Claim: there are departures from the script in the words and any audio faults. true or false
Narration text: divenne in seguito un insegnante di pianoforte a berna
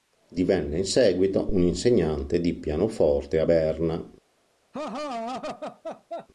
true